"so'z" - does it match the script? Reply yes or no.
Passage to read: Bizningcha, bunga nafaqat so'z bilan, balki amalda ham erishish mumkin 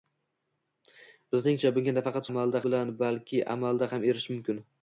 no